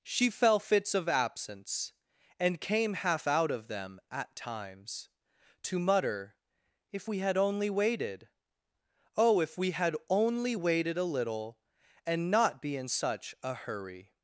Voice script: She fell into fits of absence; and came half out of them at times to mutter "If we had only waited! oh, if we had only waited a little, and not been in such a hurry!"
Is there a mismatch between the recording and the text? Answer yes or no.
yes